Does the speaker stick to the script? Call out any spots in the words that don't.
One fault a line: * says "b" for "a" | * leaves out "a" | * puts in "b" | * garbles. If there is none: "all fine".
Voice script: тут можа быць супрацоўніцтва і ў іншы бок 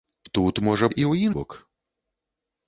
* leaves out "быць супрацоўніцтва"
* leaves out "іншы"